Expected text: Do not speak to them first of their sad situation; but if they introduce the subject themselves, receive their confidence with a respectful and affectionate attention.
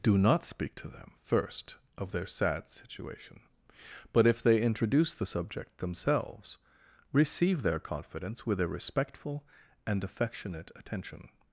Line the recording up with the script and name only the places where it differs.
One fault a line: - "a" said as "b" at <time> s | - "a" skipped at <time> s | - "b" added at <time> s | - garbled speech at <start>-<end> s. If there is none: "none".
none